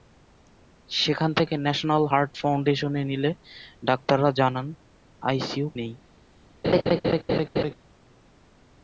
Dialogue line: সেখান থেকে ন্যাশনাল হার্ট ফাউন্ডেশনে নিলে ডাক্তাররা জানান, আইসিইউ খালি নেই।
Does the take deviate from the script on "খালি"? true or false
true